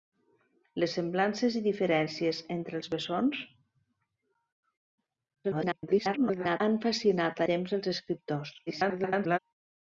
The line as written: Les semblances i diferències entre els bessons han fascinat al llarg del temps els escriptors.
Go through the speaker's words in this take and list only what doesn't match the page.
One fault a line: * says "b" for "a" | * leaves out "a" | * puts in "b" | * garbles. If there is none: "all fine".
* garbles
* leaves out "al llarg del"
* garbles